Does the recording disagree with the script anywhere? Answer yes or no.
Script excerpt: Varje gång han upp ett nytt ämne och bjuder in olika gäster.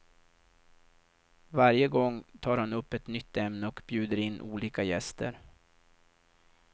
yes